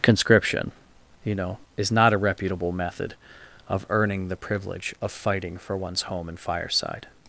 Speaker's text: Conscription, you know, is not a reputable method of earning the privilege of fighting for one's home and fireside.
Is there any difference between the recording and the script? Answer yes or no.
no